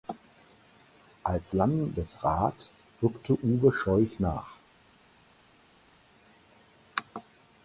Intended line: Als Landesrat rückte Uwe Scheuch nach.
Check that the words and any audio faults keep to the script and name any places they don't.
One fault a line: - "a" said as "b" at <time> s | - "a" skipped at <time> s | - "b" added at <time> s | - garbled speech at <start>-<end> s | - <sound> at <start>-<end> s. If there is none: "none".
none